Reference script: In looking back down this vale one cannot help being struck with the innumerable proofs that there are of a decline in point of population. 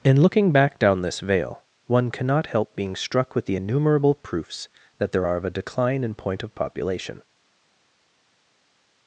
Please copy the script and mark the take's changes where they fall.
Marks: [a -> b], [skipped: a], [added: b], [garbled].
In looking back down this vale one cannot help being struck with the innumerable proofs that there are of a decline in point of population.